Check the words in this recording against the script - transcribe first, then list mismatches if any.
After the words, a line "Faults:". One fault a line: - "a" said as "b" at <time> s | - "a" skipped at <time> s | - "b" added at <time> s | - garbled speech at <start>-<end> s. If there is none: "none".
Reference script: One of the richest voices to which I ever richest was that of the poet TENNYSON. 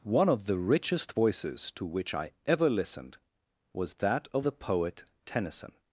One of the richest voices to which I ever listened was that of the poet TENNYSON.
Faults:
- "richest" said as "listened" at 2.7 s